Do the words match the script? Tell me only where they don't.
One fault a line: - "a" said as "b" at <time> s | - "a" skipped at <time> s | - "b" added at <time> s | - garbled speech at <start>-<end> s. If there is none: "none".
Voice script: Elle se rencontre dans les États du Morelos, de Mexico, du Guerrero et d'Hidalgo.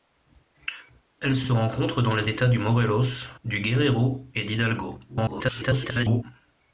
- "se" added at 1.4 s
- "de Mexico" skipped at 3.3 s
- garbled speech at 5.1-6.2 s